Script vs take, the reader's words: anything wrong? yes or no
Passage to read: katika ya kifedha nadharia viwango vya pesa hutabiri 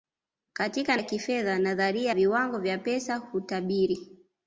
no